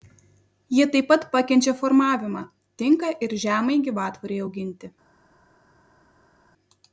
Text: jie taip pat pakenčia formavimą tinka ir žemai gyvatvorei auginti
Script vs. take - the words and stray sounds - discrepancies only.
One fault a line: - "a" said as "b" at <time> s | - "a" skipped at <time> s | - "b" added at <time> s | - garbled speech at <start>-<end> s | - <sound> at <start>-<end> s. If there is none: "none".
none